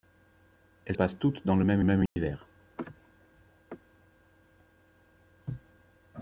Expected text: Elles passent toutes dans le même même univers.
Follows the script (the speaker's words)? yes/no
yes